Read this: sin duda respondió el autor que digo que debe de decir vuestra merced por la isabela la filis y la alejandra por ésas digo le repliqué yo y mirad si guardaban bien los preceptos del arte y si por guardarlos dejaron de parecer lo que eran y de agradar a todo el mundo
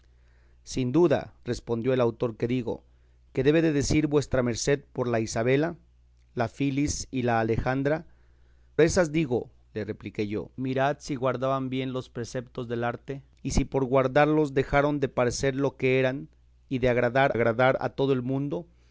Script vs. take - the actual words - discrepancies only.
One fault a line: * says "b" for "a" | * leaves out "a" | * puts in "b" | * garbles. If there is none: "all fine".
* leaves out "por"
* leaves out "y"
* puts in "agradar"